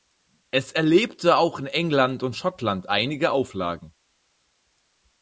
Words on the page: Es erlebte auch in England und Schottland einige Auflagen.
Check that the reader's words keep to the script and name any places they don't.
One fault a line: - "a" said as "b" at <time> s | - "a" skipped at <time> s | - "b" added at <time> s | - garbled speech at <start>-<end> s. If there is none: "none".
none